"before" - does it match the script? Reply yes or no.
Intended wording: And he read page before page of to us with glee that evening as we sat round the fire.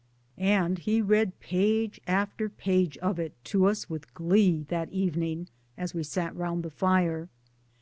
no